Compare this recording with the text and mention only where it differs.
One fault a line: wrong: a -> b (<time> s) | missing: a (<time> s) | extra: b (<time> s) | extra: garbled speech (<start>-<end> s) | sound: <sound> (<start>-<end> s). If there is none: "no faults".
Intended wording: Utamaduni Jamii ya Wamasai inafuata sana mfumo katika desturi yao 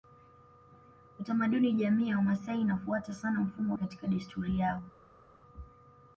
no faults